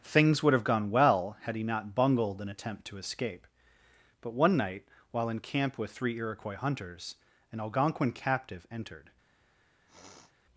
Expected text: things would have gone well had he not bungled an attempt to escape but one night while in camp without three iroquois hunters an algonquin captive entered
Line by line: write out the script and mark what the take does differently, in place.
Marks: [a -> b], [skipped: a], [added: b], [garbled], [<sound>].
things would have gone well had he not bungled an attempt to escape but one night while in camp [without -> with] three iroquois hunters an algonquin captive entered [sniff]